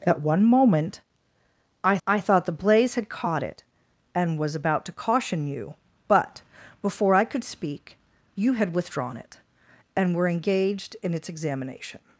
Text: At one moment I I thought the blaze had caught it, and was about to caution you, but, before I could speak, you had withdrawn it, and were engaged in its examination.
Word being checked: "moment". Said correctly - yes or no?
yes